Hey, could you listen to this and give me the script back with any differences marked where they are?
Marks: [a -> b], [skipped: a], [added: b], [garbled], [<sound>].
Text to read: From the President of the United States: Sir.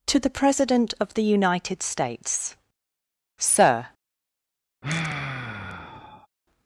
[From -> To] the President of the United States: Sir. [sigh]